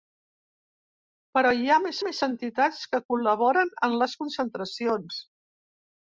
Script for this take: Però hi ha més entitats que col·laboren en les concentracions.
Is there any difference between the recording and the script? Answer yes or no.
yes